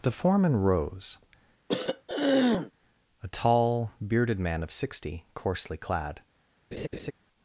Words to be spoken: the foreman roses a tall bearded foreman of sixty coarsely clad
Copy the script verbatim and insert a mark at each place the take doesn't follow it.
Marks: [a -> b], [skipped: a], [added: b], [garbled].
the foreman [roses -> rose] a tall bearded [foreman -> man] of sixty coarsely clad